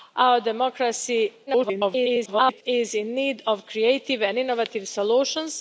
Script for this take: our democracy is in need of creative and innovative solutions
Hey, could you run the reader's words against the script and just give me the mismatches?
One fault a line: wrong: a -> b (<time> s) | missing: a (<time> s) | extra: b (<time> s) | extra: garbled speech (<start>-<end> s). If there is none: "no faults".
extra: garbled speech (1.5-2.6 s)